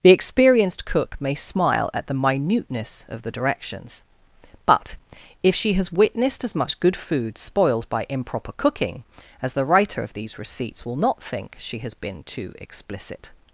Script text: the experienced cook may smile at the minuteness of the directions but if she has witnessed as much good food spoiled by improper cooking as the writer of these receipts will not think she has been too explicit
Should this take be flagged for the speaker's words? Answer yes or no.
no